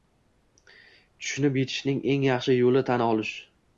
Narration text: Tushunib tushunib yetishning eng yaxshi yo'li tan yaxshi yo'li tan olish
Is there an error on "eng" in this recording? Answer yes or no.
no